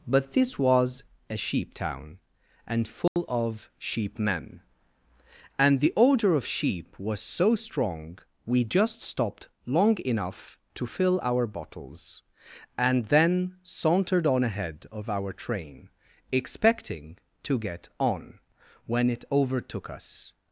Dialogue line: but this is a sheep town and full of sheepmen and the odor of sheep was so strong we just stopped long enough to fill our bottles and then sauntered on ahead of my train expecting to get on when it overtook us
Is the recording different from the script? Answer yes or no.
yes